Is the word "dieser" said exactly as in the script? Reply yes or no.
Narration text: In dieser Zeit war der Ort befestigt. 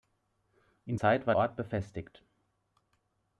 no